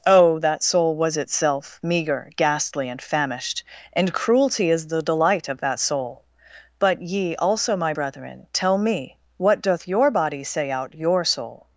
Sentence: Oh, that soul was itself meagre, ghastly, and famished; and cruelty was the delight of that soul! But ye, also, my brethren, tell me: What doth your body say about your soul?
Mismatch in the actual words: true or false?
true